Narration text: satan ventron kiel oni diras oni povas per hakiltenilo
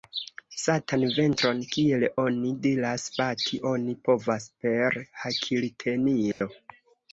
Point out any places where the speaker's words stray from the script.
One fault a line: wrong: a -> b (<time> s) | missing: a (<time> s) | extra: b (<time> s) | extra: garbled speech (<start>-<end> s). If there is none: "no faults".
extra: bati (3.2 s)